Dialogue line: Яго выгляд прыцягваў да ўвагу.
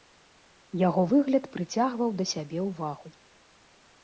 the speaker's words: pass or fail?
fail